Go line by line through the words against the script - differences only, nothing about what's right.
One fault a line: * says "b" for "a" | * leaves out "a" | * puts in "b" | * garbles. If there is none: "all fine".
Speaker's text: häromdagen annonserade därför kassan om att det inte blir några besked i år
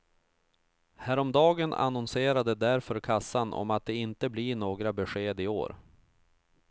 all fine